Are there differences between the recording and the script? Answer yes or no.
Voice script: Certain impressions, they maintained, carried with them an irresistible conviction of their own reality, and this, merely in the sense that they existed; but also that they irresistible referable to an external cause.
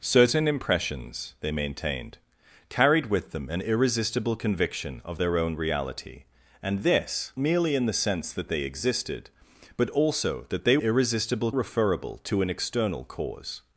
no